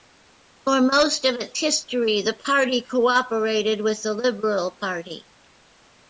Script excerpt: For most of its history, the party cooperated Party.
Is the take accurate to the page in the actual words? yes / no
no